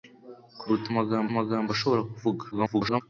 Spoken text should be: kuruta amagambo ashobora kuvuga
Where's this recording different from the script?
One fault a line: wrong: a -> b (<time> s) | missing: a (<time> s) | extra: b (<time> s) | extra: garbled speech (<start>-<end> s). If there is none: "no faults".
extra: amagambo (1.3 s)
extra: garbled speech (2.5-3.0 s)